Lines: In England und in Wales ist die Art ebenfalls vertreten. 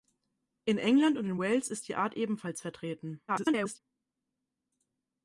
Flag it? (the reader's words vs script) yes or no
yes